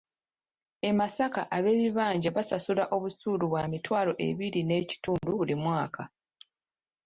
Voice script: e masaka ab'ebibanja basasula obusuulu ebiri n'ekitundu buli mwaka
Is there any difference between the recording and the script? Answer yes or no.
yes